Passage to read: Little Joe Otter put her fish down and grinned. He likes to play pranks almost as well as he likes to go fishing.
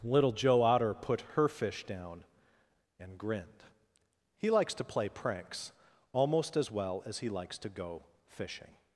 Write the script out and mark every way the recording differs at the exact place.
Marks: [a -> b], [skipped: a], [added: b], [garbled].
Little Joe Otter put her fish down and grinned. He likes to play pranks almost as well as he likes to go fishing.